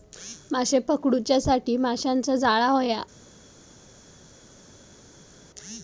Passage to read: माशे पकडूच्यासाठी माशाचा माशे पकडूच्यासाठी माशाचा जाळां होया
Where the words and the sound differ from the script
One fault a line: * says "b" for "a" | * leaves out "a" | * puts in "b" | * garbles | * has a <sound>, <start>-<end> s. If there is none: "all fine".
* leaves out "माशे पकडूच्यासाठी माशाचा"